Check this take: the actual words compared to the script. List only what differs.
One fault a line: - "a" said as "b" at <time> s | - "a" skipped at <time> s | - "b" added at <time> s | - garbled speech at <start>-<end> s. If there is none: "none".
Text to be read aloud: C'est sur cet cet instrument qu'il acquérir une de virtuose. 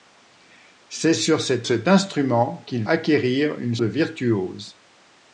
none